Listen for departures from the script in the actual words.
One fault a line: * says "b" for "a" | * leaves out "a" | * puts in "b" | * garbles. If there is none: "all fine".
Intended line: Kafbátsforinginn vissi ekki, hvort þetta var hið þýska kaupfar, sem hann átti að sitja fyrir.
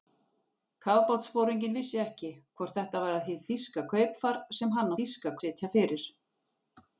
* says "þýska" for "átti"